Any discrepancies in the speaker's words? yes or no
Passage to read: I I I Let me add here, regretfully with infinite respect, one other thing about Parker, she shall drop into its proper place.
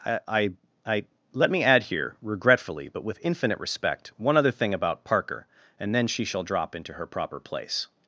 yes